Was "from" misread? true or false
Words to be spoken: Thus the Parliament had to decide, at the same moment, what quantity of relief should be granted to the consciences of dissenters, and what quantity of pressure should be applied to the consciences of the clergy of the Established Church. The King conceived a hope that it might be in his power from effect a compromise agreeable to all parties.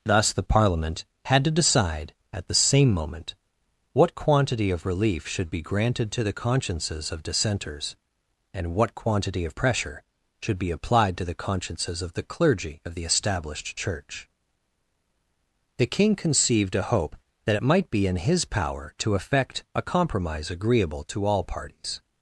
true